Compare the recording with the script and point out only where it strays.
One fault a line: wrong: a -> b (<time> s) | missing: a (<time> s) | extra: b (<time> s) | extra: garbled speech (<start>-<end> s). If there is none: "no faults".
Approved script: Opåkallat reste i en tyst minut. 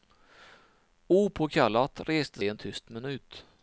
no faults